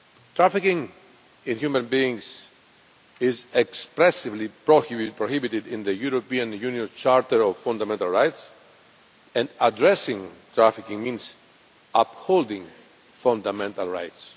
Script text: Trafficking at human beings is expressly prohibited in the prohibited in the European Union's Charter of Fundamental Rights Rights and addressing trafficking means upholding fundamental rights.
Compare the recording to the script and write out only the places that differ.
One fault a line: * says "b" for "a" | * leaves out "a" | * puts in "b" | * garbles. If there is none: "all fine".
* says "in" for "at"
* leaves out "prohibited in the"
* leaves out "Rights"